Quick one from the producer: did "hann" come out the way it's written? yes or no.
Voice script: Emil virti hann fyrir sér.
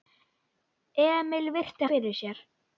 no